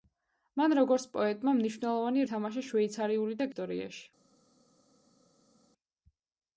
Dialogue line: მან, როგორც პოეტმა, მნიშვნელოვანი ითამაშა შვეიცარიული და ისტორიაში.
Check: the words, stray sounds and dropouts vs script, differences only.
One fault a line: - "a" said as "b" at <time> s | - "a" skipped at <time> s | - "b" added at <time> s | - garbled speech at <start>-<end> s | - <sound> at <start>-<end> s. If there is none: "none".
none